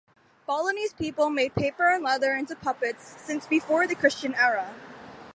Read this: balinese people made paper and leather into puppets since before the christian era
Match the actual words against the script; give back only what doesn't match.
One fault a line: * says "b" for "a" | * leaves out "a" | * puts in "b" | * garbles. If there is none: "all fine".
all fine